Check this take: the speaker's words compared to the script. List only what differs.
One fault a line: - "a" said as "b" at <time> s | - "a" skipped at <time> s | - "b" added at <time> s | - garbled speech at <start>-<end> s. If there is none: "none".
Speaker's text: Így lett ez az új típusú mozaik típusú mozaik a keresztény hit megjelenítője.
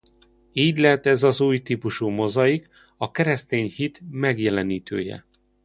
- "típusú mozaik" skipped at 2.7 s